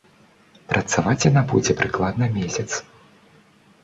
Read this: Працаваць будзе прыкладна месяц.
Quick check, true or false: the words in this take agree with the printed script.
false